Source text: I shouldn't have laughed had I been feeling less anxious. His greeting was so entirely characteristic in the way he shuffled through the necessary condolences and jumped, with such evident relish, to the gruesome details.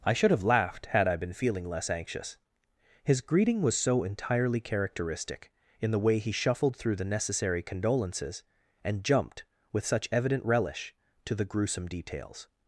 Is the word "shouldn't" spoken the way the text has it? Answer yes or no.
no